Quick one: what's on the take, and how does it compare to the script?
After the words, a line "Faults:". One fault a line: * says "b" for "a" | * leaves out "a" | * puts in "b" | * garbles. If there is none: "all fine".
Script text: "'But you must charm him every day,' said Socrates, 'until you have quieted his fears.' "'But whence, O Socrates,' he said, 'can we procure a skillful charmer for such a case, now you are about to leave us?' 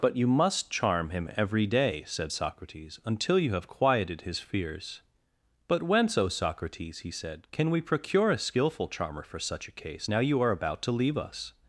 "'But you must charm him every day,' said Socrates, 'until you have quieted his fears.' "'But whence, O Socrates,' he said, 'can we procure a skillful charmer for such a case, now you are about to leave us?'
Faults:
all fine